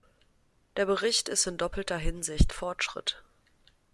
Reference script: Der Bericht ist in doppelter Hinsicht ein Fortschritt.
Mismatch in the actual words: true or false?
true